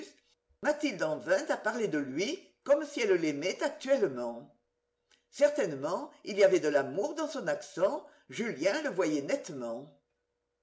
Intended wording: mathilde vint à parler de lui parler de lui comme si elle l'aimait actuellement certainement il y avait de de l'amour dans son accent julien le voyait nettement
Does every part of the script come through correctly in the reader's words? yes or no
no